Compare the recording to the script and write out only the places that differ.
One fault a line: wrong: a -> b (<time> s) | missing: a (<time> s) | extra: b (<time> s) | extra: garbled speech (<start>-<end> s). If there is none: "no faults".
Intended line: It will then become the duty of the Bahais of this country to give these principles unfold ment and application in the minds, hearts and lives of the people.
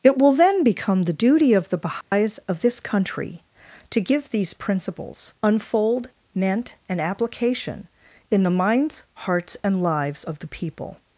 no faults